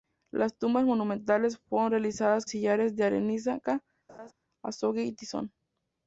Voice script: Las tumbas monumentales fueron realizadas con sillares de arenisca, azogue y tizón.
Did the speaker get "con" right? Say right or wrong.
wrong